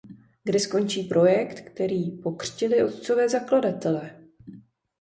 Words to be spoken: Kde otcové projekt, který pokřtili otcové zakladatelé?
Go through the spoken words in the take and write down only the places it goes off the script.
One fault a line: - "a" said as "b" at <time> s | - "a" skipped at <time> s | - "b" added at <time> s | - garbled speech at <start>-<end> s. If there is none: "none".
- "otcové" said as "skončí" at 0.6 s